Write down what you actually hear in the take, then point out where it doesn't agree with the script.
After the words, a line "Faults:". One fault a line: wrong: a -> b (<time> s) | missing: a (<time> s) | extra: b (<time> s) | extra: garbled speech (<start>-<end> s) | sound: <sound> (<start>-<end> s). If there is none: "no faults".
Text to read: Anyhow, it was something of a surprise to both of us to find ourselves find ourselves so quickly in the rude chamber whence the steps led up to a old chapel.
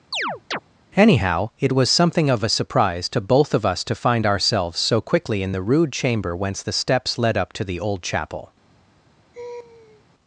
Anyhow, it was something of a surprise to both of us to find ourselves so quickly in the rude chamber whence the steps led up to the old chapel.
Faults:
sound: chirp (0.1-0.6 s)
missing: find ourselves (4.8 s)
wrong: a -> the (7.6 s)
sound: laugh (9.3-10.0 s)